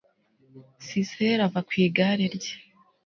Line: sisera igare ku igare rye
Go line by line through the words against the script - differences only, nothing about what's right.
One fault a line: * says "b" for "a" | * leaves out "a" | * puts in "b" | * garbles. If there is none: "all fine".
* says "ava" for "igare"